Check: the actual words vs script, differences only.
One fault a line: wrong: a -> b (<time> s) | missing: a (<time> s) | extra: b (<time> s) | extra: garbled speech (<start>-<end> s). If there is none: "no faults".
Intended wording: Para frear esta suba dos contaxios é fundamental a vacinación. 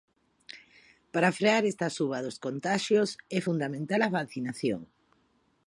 no faults